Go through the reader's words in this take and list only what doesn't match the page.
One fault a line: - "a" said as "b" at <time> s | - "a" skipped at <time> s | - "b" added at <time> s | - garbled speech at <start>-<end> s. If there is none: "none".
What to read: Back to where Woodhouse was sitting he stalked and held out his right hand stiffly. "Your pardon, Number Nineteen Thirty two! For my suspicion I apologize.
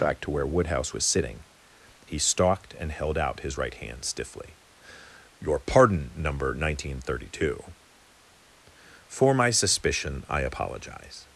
none